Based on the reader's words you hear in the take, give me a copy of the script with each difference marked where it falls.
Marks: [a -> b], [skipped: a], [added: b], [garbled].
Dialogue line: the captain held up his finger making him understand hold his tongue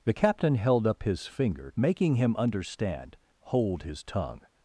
the captain held up his finger making him understand hold his tongue